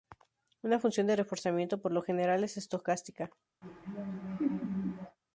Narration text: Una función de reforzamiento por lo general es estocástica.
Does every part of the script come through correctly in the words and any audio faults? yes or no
no